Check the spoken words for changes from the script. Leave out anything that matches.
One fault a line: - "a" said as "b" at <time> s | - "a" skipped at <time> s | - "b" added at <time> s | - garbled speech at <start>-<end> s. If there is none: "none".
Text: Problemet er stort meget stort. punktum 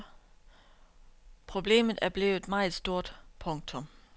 - "stort" said as "blevet" at 2.1 s